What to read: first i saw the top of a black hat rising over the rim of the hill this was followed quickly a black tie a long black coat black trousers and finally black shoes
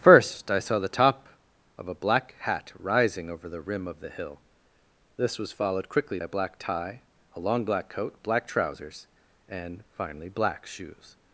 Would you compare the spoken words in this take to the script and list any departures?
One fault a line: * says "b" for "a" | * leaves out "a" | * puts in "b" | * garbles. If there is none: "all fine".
all fine